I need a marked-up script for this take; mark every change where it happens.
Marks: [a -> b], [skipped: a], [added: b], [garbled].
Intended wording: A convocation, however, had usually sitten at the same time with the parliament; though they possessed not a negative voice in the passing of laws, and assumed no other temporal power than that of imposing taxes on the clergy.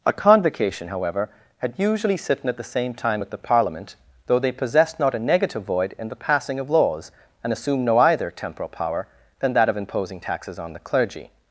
A convocation, however, had usually sitten at the same time with the parliament; though they possessed not a negative [voice -> void] in the passing of laws, and assumed no [other -> either] temporal power than that of imposing taxes on the clergy.